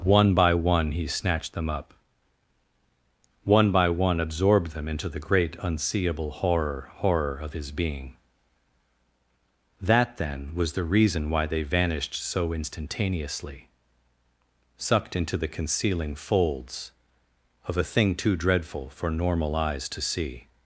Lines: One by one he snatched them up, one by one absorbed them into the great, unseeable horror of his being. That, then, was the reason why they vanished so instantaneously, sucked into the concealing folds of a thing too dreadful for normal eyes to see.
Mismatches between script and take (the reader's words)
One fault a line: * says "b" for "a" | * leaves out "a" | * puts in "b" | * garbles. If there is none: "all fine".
* puts in "horror"